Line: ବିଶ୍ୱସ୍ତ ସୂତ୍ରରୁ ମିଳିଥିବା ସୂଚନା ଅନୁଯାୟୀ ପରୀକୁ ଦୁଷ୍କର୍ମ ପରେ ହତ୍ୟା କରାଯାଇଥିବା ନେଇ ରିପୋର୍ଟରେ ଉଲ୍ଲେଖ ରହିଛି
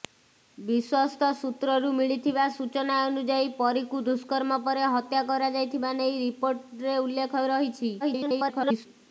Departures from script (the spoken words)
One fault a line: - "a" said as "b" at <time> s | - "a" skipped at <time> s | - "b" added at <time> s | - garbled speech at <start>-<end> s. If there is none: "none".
- garbled speech at 8.0-8.9 s